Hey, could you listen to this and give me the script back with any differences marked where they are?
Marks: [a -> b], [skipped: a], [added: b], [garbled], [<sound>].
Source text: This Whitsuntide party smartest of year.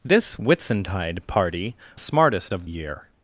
This Whitsuntide party smartest of year.